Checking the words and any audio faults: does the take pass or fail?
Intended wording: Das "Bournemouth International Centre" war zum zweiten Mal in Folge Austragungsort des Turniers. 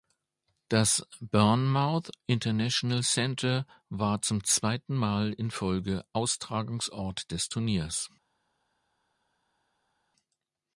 pass